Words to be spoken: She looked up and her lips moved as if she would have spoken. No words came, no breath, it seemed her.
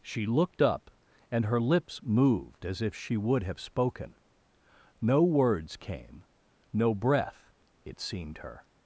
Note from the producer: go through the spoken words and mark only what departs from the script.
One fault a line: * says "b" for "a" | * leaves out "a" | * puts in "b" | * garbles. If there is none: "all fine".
all fine